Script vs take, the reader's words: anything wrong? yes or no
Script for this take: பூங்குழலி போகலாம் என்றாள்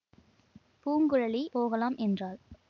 no